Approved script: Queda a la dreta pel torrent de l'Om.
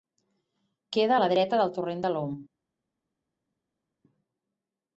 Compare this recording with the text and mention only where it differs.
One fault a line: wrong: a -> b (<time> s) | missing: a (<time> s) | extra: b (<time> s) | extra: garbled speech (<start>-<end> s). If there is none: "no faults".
wrong: pel -> del (1.6 s)